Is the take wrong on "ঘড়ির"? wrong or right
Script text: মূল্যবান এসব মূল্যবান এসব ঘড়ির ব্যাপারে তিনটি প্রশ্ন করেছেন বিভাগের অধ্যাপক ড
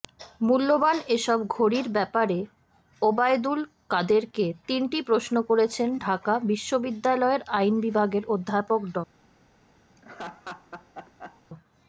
wrong